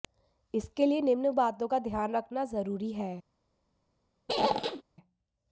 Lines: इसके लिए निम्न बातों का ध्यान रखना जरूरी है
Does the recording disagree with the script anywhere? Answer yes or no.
no